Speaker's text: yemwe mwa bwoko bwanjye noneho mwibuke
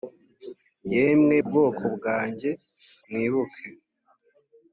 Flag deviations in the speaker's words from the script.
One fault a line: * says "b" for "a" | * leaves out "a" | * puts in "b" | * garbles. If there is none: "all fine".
* leaves out "mwa"
* leaves out "noneho"